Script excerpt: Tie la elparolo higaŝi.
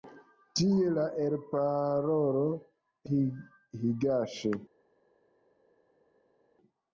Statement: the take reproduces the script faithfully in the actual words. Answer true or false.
true